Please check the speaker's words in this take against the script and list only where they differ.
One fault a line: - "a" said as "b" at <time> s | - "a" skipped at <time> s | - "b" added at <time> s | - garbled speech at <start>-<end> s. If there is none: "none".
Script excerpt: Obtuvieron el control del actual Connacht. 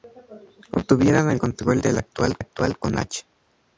- "actual" added at 2.4 s